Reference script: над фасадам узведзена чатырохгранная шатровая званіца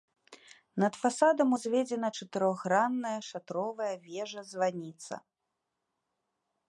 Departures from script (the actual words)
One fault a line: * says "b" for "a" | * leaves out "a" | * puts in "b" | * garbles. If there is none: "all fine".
* puts in "вежа"